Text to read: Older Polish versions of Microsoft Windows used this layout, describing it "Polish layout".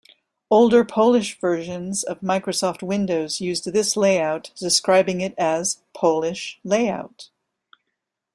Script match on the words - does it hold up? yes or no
no